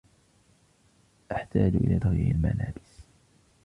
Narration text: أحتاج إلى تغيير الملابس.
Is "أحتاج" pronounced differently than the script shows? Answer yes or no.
no